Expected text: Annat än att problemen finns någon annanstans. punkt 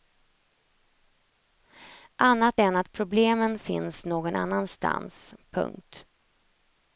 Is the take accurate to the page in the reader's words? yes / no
yes